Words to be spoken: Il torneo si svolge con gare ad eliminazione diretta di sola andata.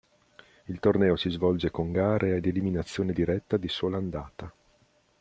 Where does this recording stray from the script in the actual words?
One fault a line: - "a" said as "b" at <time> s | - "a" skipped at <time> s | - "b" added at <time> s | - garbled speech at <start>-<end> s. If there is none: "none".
none